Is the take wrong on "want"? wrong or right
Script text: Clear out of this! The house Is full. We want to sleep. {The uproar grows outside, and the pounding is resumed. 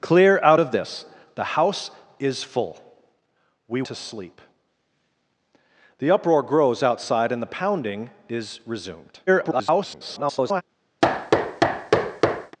wrong